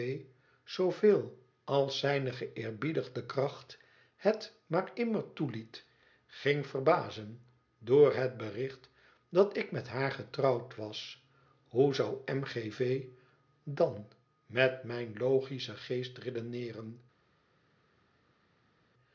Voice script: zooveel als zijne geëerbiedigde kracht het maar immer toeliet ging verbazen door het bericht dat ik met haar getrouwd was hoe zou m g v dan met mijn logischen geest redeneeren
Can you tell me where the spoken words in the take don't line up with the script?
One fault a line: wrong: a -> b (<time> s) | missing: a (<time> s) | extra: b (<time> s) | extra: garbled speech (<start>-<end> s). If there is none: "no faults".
no faults